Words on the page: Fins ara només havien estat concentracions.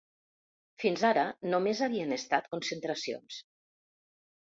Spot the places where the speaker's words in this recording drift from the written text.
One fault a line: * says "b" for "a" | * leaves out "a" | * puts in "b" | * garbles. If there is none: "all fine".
all fine